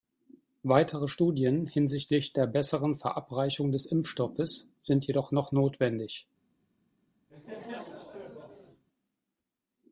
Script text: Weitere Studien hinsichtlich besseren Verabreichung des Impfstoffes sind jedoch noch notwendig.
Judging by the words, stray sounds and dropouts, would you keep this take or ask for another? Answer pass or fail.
fail